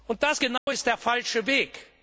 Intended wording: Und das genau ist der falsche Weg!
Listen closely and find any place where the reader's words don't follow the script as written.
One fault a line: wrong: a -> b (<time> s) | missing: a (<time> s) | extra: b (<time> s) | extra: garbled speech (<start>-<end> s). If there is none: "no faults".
no faults